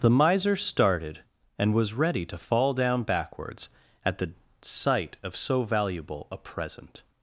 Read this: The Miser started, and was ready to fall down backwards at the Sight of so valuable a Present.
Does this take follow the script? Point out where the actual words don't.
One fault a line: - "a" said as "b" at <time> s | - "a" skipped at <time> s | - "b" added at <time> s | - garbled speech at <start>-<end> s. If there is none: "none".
none